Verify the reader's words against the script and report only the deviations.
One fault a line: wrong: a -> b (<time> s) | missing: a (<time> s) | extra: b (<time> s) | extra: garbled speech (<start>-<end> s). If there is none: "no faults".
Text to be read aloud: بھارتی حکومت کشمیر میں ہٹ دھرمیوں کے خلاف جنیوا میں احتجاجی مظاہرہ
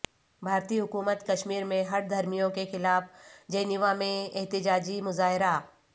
no faults